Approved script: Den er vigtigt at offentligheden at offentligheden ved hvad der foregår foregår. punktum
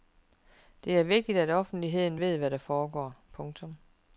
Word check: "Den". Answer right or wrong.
wrong